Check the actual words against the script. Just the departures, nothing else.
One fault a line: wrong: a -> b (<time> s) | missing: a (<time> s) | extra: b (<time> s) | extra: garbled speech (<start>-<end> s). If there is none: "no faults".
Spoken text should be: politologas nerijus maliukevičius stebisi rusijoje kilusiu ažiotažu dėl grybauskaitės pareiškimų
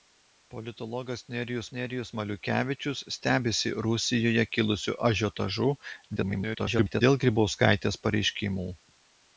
extra: nerijus (1.8 s)
extra: garbled speech (6.2-7.0 s)